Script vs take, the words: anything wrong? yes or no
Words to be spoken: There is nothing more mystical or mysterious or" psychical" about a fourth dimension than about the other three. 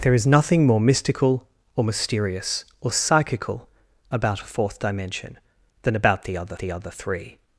yes